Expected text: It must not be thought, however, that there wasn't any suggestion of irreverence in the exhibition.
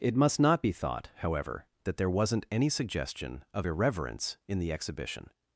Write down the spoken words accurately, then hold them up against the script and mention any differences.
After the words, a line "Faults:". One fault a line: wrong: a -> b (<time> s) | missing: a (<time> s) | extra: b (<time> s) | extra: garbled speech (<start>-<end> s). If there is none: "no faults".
It must not be thought, however, that there wasn't any suggestion of irreverence in the exhibition.
Faults:
no faults